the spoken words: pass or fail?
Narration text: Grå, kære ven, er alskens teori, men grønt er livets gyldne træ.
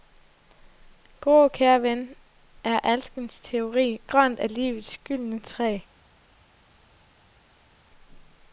fail